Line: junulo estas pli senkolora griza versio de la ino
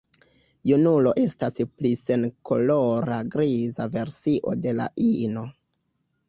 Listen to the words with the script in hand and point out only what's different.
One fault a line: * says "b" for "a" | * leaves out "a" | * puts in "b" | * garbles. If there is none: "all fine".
all fine